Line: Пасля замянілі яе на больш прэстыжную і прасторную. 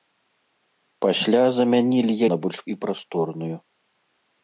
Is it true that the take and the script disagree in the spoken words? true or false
true